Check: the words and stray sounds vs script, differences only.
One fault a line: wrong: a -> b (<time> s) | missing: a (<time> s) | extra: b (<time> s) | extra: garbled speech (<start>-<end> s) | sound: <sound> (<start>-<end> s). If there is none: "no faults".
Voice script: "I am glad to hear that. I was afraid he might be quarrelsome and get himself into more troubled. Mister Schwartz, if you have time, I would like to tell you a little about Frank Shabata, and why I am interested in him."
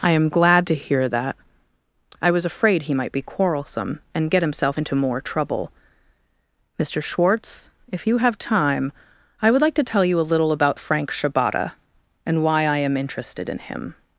wrong: troubled -> trouble (5.2 s)